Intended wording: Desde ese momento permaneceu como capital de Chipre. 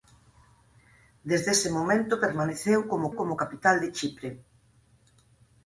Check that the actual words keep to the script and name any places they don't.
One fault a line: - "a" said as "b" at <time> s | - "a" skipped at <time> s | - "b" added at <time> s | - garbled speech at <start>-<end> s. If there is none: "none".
- "como" added at 3.2 s